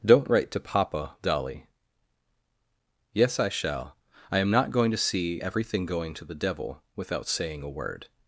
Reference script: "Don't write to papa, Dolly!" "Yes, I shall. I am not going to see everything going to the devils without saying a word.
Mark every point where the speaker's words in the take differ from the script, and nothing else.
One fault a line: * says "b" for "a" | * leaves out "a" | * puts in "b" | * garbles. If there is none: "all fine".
* says "devil" for "devils"